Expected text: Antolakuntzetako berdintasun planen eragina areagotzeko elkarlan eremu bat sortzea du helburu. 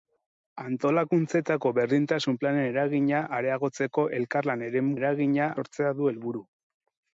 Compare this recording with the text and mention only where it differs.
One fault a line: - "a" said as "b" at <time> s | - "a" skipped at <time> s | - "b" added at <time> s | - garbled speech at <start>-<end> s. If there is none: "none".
- "bat" said as "eragina" at 5.0 s